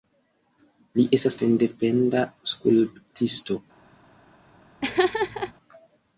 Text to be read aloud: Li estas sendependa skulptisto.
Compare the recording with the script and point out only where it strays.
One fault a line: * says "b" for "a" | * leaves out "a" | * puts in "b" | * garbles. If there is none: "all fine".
all fine